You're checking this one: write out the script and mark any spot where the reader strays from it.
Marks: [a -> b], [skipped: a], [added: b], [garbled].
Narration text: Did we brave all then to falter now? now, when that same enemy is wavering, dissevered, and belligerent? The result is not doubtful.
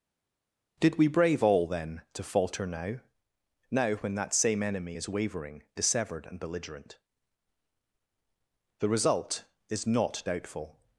Did we brave all then to falter now? now, when that same enemy is wavering, dissevered, and belligerent? The result is not doubtful.